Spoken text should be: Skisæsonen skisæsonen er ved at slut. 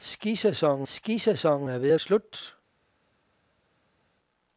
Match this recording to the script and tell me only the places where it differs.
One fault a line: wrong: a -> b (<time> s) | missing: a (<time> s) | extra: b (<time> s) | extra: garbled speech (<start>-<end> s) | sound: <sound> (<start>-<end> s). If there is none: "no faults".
no faults